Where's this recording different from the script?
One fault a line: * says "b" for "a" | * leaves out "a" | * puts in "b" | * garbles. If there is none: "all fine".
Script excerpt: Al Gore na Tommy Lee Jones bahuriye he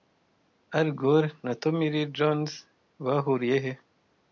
all fine